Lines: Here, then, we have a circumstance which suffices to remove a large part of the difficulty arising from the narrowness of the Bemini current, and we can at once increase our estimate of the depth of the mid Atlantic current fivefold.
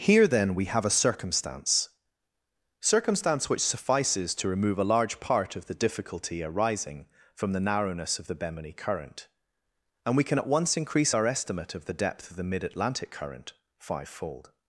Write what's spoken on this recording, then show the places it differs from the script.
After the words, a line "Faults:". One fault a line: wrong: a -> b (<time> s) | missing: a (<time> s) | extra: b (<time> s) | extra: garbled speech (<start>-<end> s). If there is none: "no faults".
Here, then, we have a circumstance circumstance which suffices to remove a large part of the difficulty arising from the narrowness of the Bemini current, and we can at once increase our estimate of the depth of the mid Atlantic current fivefold.
Faults:
extra: circumstance (2.8 s)